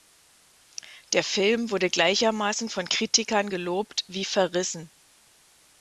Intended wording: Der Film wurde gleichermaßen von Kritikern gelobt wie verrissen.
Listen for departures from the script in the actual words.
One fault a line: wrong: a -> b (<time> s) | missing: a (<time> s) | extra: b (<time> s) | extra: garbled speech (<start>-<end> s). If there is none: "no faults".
no faults